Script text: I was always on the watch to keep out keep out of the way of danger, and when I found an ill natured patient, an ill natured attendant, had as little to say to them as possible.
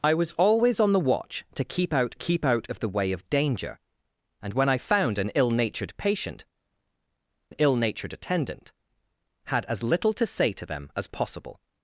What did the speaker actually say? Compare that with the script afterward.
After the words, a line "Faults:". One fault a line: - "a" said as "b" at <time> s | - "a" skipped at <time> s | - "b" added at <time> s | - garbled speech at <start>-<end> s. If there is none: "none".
I was always on the watch to keep out keep out of the way of danger, and when I found an ill natured patient, an ill natured attendant, had as little to say to them as possible.
Faults:
none